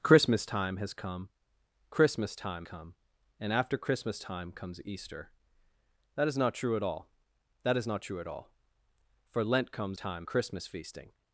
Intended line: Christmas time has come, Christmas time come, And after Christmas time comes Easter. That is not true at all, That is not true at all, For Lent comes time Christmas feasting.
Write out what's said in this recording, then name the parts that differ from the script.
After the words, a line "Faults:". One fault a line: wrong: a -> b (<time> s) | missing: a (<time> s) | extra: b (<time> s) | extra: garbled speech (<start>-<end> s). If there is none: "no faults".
Christmas time has come, Christmas time come, And after Christmas time comes Easter. That is not true at all, That is not true at all, For Lent comes time Christmas feasting.
Faults:
no faults